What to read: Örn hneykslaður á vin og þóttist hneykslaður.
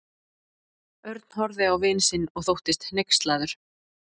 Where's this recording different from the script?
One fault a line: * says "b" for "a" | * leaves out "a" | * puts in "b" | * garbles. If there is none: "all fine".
* says "horfði" for "hneykslaður"
* puts in "sinn"